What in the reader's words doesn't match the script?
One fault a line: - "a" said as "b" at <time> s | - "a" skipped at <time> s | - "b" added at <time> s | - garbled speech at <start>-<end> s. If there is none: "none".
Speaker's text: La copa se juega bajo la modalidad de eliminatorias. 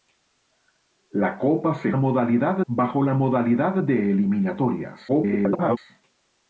- "juega" said as "modalidad" at 2.0 s
- garbled speech at 5.1-5.8 s